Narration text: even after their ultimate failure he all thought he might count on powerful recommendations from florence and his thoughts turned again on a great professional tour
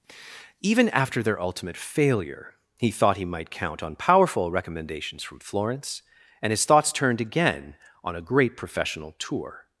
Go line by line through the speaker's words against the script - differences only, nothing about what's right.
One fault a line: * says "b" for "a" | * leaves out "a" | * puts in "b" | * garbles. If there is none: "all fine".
* leaves out "all"